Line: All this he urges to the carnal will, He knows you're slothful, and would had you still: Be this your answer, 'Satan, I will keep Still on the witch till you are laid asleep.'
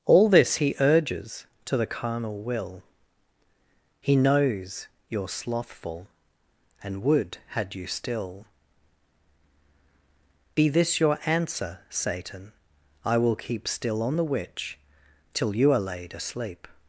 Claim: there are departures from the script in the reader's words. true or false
false